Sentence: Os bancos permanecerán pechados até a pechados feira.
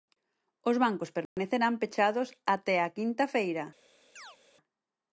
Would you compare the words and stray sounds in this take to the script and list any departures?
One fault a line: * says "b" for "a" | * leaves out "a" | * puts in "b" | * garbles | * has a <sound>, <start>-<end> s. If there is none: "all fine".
* has a dropout, 1.2-1.4 s
* says "quinta" for "pechados"
* has a chirp, 4.2-4.4 s